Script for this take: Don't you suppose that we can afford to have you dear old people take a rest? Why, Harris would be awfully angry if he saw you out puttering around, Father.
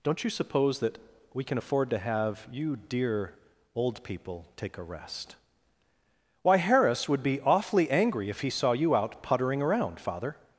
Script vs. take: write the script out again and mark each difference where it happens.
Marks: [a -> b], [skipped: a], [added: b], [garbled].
Don't you suppose that we can afford to have you dear old people take a rest? Why, Harris would be awfully angry if he saw you out puttering around, Father.